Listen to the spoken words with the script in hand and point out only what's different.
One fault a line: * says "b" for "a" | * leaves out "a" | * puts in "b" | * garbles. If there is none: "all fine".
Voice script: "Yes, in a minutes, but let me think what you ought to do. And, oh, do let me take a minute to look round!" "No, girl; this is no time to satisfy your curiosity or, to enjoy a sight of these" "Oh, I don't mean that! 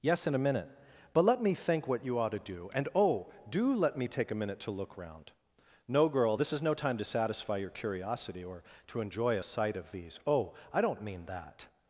* says "minute" for "minutes"